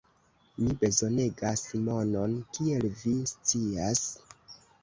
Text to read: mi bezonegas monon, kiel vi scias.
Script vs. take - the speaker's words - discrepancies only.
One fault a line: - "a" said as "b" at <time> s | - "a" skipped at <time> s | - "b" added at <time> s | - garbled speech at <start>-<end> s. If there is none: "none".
none